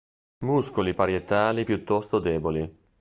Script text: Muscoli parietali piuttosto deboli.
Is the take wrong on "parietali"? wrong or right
right